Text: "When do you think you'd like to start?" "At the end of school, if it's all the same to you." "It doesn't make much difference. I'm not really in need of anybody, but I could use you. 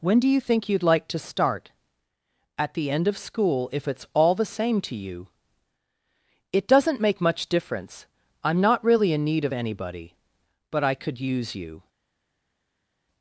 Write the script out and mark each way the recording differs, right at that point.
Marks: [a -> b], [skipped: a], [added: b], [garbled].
"When do you think you'd like to start?" "At the end of school, if it's all the same to you." "It doesn't make much difference. I'm not really in need of anybody, but I could use you.